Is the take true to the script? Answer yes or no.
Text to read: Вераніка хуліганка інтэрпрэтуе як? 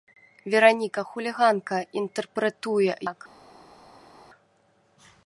yes